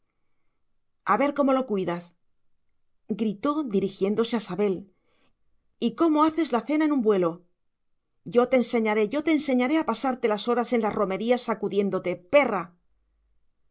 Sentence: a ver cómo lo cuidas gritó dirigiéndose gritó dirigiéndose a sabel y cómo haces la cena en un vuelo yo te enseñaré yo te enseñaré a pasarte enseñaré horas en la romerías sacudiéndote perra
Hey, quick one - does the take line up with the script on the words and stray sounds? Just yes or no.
no